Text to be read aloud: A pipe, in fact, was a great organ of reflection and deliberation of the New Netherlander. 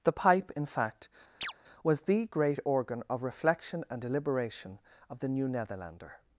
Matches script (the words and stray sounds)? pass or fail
fail